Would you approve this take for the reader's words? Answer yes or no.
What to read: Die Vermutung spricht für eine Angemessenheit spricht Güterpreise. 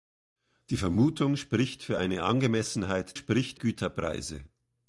yes